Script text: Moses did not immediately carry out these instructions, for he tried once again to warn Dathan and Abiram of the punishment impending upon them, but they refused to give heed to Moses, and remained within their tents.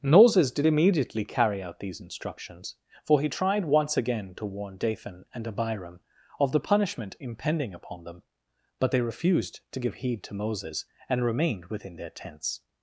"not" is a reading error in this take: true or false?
true